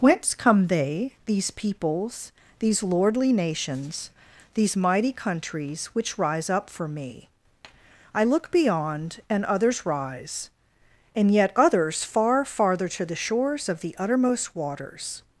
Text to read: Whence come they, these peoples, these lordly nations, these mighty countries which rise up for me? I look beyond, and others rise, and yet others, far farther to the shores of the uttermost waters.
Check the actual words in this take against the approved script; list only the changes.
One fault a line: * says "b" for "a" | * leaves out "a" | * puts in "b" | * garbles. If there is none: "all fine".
all fine